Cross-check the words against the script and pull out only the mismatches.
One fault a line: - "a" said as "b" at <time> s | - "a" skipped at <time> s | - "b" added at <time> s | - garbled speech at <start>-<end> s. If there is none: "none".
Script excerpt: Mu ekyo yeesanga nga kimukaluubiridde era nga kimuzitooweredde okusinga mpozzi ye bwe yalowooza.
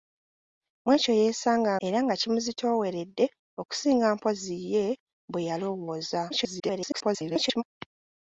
- "nga kimukaluubiridde" skipped at 1.7 s
- garbled speech at 6.3-7.6 s